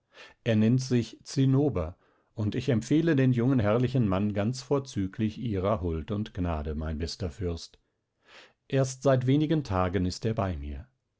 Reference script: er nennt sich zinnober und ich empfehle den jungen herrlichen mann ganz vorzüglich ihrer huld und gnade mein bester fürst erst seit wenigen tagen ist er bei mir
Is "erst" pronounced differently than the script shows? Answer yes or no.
no